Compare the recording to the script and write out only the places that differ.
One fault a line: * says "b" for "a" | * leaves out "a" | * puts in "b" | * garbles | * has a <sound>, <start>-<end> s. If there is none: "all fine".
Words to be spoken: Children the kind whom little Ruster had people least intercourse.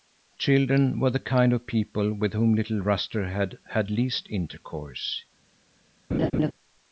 * puts in "were"
* puts in "of people with"
* says "had" for "people"
* has a laugh, 6.1-6.5 s